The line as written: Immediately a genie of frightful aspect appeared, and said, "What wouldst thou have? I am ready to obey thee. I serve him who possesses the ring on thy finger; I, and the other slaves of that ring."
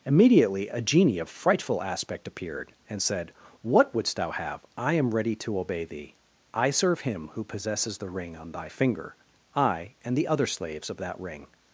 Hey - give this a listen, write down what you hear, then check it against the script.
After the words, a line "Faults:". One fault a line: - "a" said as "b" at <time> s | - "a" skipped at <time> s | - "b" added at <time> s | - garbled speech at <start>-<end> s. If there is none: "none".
Immediately a genie of frightful aspect appeared, and said, "What wouldst thou have? I am ready to obey thee. I serve him who possesses the ring on thy finger; I, and the other slaves of that ring."
Faults:
none